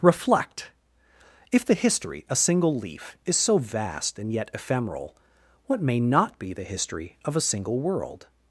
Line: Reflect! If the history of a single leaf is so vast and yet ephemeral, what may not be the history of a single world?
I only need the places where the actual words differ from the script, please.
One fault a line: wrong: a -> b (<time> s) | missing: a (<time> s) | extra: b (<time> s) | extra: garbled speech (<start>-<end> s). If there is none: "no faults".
missing: of (2.2 s)